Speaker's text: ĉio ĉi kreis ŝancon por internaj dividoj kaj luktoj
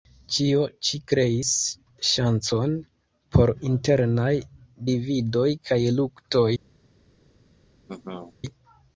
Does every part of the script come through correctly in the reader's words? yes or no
yes